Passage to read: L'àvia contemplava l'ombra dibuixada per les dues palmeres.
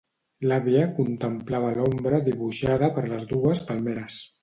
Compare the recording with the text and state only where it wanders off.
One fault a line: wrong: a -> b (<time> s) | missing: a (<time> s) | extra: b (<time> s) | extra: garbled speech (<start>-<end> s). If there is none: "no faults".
no faults